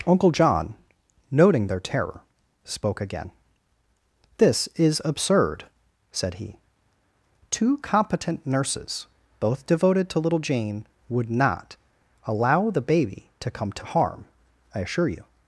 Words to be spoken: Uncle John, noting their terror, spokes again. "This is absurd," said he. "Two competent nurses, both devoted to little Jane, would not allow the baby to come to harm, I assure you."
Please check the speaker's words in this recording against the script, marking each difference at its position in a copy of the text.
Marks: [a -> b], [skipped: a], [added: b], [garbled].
Uncle John, noting their terror, [spokes -> spoke] again. "This is absurd," said he. "Two competent nurses, both devoted to little Jane, would not allow the baby to come to harm, I assure you."